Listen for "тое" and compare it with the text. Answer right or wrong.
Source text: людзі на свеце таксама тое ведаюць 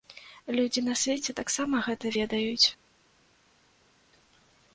wrong